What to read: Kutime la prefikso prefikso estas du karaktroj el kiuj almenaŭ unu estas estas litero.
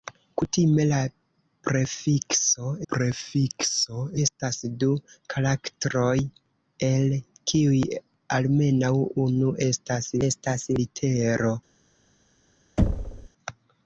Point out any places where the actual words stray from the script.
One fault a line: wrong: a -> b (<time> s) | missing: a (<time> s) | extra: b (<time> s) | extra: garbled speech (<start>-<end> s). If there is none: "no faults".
no faults